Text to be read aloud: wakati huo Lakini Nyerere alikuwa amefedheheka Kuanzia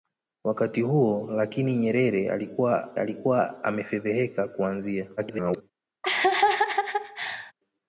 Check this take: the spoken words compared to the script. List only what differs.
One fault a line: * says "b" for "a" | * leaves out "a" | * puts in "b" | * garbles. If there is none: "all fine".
* puts in "alikuwa"
* garbles